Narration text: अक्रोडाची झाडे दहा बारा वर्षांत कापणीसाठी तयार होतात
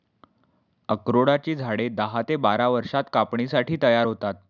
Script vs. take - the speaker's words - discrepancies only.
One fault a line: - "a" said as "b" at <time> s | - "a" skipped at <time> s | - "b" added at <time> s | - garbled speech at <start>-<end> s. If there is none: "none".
- "ते" added at 2.2 s